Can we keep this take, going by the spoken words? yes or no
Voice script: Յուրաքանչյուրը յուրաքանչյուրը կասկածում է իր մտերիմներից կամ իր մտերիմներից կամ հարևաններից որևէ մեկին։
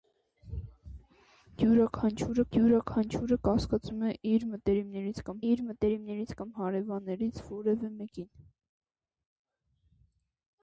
yes